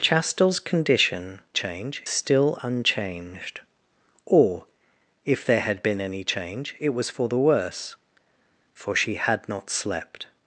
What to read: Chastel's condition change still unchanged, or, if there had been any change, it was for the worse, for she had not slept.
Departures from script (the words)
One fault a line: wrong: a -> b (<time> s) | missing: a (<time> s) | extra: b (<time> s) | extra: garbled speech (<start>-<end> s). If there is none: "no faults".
no faults